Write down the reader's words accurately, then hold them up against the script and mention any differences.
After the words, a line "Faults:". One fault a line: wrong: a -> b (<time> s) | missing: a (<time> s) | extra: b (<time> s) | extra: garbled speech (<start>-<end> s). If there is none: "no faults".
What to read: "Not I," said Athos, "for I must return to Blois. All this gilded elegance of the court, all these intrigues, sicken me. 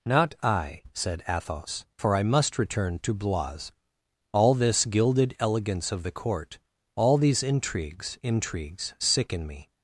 "Not I," said Athos, "for I must return to Blois. All this gilded elegance of the court, all these intrigues intrigues, sicken me.
Faults:
extra: intrigues (8.2 s)